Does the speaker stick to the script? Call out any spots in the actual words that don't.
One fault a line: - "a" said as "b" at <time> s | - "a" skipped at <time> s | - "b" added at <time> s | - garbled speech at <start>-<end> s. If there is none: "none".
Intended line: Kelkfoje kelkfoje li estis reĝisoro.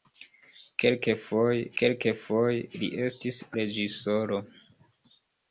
none